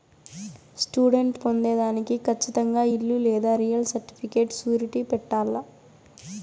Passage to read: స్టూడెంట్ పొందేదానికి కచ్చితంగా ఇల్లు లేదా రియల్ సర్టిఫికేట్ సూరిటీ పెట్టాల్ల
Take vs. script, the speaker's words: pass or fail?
pass